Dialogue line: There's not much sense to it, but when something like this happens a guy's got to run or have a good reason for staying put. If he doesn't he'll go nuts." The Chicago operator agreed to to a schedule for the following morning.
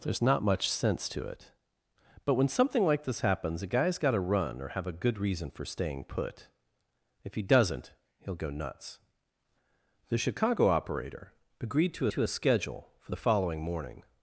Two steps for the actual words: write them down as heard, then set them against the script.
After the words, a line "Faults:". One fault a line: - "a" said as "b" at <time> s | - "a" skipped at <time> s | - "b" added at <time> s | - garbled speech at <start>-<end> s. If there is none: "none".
There's not much sense to it, but when something like this happens a guy's got to run or have a good reason for staying put. If he doesn't he'll go nuts." The Chicago operator agreed to to a schedule for the following morning.
Faults:
none